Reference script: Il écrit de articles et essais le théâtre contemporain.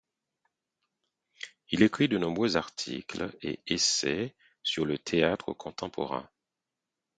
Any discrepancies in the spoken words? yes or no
yes